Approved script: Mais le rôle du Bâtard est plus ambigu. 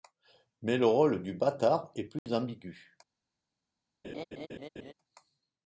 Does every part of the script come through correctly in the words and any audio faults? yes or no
no